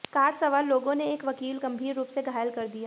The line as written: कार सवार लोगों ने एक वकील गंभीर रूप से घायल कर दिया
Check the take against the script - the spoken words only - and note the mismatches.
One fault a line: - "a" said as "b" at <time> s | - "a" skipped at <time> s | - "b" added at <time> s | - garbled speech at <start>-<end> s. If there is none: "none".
none